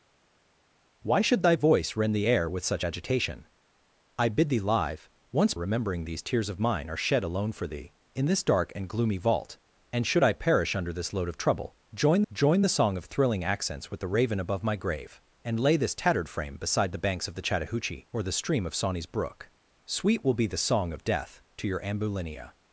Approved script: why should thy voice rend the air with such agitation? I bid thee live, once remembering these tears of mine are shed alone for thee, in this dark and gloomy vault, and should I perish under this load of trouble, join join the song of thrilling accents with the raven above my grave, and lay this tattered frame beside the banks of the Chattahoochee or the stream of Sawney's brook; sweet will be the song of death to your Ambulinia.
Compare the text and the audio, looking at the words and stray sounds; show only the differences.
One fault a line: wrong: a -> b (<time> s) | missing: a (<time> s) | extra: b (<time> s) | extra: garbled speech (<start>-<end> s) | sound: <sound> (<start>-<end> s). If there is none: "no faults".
no faults